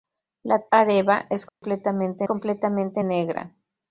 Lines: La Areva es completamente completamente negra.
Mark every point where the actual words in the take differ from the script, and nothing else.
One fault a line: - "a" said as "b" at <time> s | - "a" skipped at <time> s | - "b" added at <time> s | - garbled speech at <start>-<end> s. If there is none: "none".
none